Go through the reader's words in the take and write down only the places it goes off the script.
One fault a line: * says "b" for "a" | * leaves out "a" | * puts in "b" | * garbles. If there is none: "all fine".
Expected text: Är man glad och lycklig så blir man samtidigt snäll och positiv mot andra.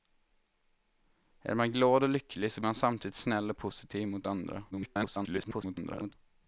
* leaves out "blir"
* garbles